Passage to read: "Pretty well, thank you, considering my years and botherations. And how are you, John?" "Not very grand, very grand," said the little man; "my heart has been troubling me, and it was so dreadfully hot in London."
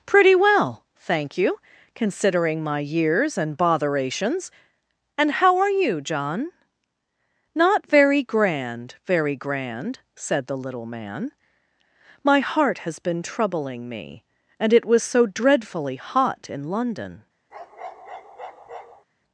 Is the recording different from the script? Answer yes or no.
no